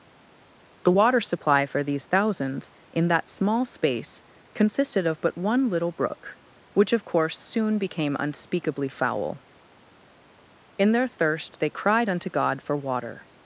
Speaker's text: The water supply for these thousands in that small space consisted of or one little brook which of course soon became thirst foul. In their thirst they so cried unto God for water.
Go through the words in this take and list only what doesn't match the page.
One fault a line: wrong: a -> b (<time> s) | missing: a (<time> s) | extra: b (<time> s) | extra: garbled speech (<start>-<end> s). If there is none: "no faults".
wrong: or -> but (5.2 s)
wrong: thirst -> unspeakably (8.2 s)
missing: so (11.7 s)